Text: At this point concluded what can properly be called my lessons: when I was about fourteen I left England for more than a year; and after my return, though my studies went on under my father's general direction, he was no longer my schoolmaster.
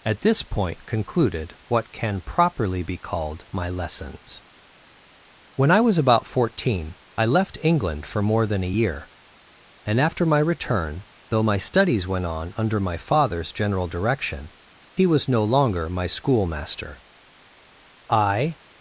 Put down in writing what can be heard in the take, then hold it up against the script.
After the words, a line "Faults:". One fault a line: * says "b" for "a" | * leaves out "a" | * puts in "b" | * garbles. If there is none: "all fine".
At this point concluded what can properly be called my lessons: when I was about fourteen I left England for more than a year; and after my return, though my studies went on under my father's general direction, he was no longer my schoolmaster. I
Faults:
* puts in "I"